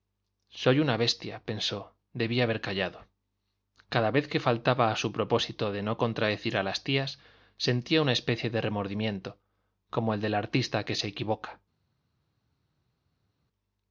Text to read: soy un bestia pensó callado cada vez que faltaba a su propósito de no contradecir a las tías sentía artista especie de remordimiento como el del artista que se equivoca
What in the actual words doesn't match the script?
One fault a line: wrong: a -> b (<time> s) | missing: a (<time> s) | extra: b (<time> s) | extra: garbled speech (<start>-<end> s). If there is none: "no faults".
wrong: un -> una (0.8 s)
extra: debí haber (2.1 s)
wrong: artista -> una (8.0 s)